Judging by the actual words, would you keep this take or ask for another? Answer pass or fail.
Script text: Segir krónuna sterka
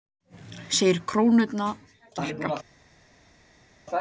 pass